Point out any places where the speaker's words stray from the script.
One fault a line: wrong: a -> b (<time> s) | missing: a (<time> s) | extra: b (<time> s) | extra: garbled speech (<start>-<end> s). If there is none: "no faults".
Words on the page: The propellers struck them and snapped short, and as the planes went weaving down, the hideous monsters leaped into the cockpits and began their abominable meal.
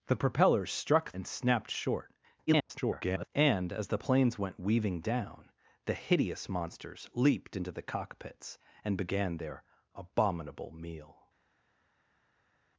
missing: them (1.1 s)
extra: garbled speech (2.5-3.3 s)